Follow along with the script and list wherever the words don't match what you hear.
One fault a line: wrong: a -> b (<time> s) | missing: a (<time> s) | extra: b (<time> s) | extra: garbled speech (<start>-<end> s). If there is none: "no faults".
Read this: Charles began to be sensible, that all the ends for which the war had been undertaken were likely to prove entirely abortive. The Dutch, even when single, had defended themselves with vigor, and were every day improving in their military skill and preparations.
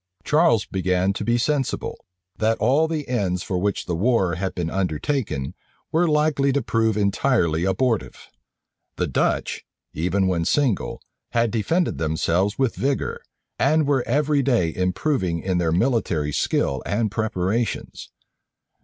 no faults